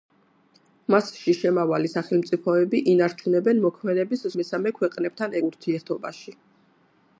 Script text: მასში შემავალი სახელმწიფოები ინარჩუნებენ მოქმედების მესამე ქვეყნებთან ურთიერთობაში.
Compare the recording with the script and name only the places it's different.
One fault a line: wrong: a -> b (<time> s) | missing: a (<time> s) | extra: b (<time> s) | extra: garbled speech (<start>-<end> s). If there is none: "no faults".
no faults